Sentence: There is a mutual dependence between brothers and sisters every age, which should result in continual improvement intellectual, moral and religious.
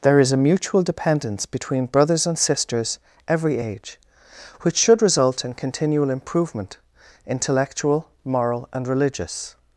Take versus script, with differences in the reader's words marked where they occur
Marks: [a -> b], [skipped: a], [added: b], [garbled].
There is a mutual dependence between brothers and sisters every age, which should result in continual improvement intellectual, moral and religious.